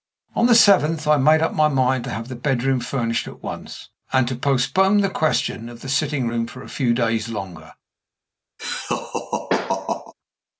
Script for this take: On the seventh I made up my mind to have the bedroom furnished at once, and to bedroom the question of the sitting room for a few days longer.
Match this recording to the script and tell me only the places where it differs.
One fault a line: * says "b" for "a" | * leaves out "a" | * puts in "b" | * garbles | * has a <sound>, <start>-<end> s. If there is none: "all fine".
* says "postpone" for "bedroom"
* has a laugh, 8.6-10.1 s